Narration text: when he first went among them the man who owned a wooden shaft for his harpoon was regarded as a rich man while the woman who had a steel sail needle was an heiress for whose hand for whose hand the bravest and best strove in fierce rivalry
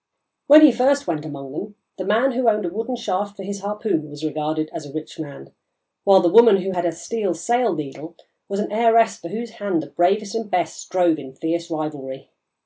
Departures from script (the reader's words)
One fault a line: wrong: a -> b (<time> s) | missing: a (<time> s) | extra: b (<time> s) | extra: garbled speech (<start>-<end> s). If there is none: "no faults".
missing: for whose hand (9.8 s)